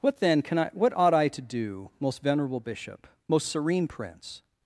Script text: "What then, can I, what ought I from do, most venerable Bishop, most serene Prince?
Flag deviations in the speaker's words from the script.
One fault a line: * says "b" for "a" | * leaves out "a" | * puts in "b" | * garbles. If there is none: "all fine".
* says "to" for "from"